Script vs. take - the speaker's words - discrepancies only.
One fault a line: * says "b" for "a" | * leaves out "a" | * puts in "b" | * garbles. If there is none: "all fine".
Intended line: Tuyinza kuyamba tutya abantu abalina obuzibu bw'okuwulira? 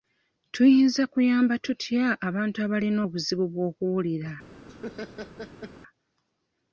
all fine